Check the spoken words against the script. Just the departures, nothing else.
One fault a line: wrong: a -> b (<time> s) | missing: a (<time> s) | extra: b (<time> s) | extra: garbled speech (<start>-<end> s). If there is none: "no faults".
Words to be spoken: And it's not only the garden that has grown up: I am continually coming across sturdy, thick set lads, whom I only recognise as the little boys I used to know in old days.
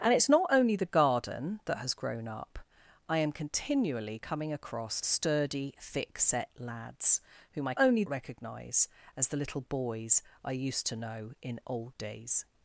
no faults